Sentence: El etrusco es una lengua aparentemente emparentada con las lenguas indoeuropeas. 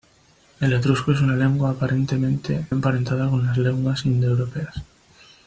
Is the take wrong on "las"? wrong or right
right